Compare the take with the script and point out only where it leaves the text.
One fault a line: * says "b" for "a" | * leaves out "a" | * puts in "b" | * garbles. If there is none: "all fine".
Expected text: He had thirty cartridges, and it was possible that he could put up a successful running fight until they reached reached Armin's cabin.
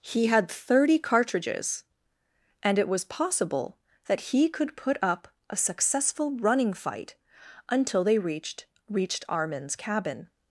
all fine